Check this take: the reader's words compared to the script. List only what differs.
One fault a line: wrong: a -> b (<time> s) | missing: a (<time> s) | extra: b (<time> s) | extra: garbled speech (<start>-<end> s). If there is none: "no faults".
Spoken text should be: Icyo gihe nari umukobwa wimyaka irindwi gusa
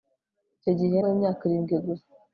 missing: nari umukobwa (1.0 s)